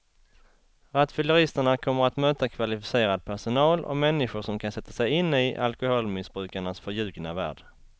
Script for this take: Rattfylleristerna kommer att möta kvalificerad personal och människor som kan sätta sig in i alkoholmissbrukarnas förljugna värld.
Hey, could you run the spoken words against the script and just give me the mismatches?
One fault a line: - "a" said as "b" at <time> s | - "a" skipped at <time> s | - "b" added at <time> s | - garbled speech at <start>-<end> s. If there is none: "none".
none